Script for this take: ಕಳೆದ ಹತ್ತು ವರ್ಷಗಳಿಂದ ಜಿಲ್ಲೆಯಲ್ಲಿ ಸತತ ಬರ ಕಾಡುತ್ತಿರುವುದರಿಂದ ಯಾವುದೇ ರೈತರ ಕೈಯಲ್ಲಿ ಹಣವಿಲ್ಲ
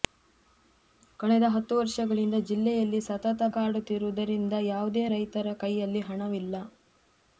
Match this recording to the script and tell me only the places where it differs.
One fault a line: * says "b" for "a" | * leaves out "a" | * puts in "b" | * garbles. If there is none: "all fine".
* leaves out "ಬರ"